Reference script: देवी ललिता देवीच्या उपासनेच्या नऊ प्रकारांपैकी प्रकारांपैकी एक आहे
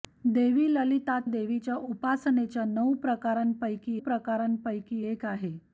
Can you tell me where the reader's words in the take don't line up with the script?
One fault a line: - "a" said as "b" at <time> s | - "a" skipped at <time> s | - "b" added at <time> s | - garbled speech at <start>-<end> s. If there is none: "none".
none